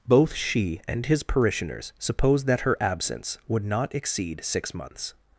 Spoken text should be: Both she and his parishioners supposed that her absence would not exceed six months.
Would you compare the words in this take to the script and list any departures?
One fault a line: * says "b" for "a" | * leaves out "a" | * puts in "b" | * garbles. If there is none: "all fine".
all fine